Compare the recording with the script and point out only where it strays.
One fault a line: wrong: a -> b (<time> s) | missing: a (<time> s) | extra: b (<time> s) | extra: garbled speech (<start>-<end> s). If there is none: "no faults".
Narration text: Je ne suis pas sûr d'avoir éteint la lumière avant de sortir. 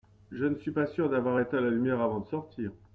no faults